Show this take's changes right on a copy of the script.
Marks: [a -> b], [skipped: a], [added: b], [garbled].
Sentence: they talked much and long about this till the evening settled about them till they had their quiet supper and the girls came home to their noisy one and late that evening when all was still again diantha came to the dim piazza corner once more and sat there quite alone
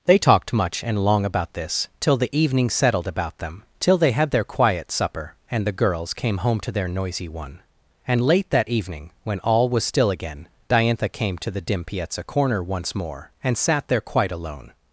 they talked much and long about this till the evening settled about them till they had their quiet supper and the girls came home to their noisy one and late that evening when all was still again diantha came to the dim piazza corner once more and sat there quite alone